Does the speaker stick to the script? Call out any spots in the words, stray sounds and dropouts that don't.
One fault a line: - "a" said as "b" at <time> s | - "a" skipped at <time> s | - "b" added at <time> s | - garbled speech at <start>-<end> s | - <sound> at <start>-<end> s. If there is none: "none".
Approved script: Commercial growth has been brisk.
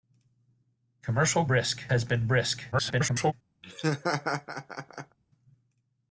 - "growth" said as "brisk" at 1.5 s
- garbled speech at 2.7-3.3 s
- laugh at 3.6-5.2 s